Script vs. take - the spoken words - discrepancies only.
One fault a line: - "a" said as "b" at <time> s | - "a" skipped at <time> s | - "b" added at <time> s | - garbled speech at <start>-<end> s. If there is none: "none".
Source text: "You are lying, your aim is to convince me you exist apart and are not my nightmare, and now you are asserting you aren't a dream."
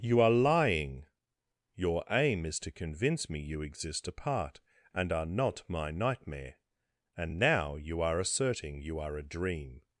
- "aren't" said as "are" at 9.0 s